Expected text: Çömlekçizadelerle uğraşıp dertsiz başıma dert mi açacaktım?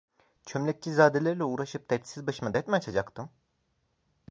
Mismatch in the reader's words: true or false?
false